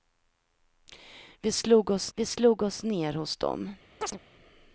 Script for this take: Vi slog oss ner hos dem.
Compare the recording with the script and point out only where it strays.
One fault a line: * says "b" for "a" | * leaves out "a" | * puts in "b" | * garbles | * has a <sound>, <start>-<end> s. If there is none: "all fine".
* puts in "vi slog oss"
* has a chirp, 4.0-4.2 s